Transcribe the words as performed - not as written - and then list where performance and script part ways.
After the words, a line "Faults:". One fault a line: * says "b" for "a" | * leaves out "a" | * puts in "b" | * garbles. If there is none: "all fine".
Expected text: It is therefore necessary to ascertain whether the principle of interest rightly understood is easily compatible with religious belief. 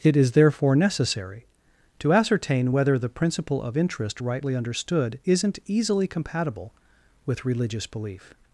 It is therefore necessary to ascertain whether the principle of interest rightly understood isn't easily compatible with religious belief.
Faults:
* says "isn't" for "is"